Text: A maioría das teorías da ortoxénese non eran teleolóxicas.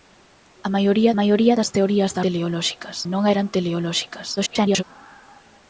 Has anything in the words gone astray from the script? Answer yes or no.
yes